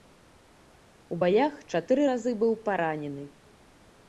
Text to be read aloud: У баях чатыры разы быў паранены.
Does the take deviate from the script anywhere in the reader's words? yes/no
no